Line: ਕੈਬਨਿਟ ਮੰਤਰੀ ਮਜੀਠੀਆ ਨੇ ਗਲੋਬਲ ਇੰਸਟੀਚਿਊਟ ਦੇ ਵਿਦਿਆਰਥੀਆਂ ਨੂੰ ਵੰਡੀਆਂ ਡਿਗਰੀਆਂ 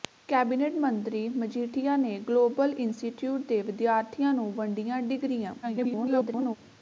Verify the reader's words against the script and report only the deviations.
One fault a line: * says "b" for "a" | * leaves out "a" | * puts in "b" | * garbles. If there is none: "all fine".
* garbles